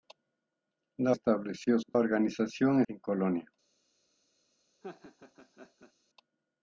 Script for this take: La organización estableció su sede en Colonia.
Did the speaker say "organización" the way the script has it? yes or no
no